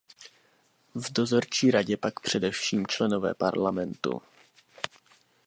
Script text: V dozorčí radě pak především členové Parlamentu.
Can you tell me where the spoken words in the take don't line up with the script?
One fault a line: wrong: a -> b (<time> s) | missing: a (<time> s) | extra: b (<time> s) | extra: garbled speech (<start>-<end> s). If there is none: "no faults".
no faults